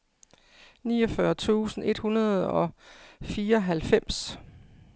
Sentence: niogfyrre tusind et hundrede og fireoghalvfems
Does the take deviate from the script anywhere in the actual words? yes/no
no